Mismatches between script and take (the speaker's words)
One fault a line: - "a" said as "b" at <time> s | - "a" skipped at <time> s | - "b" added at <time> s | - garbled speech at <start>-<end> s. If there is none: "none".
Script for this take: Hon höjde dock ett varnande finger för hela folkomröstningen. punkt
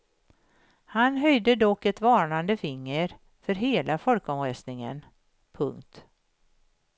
- "Hon" said as "Han" at 0.8 s